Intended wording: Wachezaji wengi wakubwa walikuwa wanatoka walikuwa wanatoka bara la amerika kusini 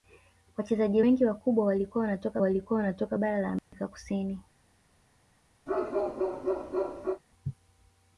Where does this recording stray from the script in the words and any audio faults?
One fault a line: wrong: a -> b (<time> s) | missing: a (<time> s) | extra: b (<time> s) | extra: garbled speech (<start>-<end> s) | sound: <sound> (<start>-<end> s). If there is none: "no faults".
sound: dropout (3.6-3.7 s)
sound: bark (5.7-7.2 s)